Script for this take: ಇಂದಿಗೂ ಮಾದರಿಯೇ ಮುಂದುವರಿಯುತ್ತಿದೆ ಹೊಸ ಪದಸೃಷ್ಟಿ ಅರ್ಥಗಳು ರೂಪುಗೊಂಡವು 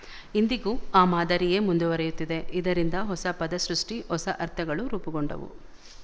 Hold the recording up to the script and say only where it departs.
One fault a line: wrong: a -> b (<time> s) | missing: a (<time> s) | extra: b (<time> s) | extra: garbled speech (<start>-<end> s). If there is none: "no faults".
extra: ಆ (0.9 s)
extra: ಇದರಿಂದ (2.5 s)
extra: ಹೊಸ (4.1 s)